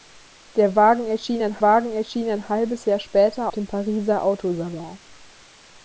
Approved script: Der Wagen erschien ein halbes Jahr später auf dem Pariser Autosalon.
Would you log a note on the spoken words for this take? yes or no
yes